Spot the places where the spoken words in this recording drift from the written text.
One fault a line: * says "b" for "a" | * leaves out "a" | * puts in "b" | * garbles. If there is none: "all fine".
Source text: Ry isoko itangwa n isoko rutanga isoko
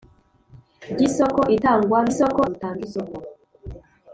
all fine